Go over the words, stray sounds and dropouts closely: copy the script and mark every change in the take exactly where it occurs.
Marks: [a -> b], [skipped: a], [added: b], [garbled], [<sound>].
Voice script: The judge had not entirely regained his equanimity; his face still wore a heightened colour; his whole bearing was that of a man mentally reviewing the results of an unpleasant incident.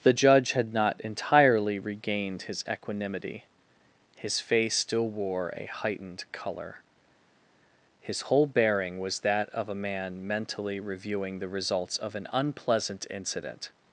The judge had not entirely regained his equanimity; his face still wore a heightened colour; his whole bearing was that of a man mentally reviewing the results of an unpleasant incident.